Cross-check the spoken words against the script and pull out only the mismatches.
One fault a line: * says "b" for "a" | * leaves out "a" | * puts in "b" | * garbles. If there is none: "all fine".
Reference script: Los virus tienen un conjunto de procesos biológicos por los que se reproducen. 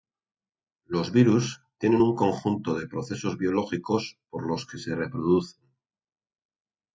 all fine